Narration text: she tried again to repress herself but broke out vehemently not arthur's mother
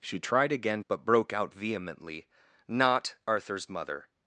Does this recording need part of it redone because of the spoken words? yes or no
yes